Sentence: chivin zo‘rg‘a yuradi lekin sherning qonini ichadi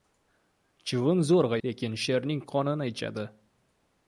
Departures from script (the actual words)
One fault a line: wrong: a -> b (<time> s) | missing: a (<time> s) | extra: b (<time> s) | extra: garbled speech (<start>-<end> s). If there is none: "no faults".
missing: yuradi (1.6 s)